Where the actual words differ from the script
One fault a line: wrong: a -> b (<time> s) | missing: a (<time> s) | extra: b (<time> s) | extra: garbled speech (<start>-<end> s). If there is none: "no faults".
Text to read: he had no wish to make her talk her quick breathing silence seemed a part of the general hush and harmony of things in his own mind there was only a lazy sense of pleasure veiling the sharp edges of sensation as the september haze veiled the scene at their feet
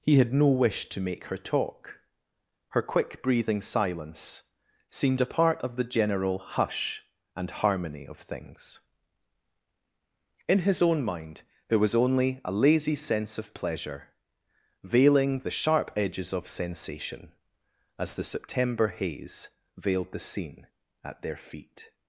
no faults